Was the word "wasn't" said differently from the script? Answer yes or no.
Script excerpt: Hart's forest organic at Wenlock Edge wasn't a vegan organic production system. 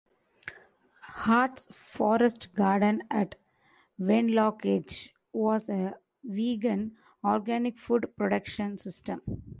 yes